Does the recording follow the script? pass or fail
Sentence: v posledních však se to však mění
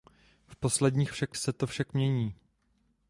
pass